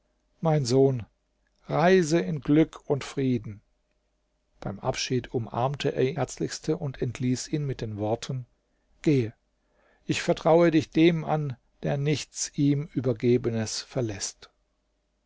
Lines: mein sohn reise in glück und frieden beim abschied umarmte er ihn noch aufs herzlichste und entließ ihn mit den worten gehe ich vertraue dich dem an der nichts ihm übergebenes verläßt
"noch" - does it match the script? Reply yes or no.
no